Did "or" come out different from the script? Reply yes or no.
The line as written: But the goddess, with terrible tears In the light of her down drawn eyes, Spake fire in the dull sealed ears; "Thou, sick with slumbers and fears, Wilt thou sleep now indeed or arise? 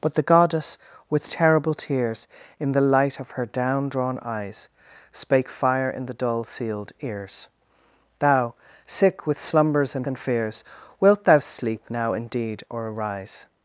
no